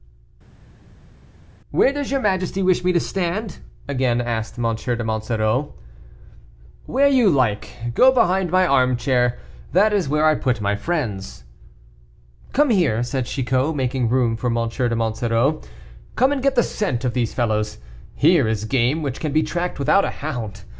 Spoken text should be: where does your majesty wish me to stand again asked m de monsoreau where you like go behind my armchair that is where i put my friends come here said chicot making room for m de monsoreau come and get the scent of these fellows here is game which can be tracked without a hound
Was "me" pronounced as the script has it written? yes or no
yes